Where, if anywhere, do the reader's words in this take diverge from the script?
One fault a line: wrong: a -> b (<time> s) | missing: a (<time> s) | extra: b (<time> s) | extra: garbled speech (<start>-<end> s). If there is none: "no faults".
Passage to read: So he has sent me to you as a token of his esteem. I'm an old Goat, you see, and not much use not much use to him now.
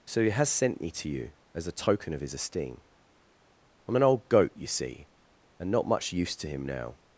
missing: not much use (6.4 s)